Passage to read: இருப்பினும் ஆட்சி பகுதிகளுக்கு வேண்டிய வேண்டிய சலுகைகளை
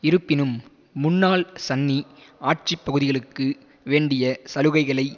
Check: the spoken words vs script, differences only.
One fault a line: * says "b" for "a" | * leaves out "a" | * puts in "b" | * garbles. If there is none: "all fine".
* puts in "முன்னாள் சன்னி"
* leaves out "வேண்டிய"